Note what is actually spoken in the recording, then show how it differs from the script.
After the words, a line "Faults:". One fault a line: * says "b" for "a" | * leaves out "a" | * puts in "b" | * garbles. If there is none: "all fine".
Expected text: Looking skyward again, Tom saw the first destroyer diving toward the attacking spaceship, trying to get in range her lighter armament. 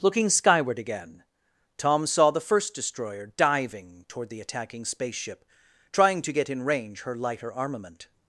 Looking skyward again, Tom saw the first destroyer diving toward the attacking spaceship, trying to get in range her lighter armament.
Faults:
all fine